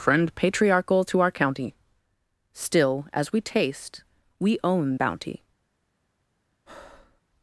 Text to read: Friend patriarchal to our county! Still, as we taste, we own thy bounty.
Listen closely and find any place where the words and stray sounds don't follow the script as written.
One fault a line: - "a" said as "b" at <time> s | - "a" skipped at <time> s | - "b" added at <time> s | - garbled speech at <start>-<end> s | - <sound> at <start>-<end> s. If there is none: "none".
- "thy" skipped at 5.0 s
- breath at 6.7-7.2 s